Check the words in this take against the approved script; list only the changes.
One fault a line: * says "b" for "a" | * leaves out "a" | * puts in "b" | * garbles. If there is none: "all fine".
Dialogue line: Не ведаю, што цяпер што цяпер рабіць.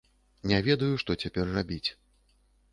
* leaves out "што цяпер"